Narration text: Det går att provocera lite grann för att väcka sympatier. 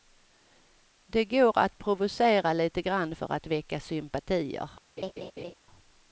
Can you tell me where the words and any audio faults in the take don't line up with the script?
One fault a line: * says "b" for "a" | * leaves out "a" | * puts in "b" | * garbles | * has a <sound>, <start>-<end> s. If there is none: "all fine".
* has a laugh, 5.0-5.5 s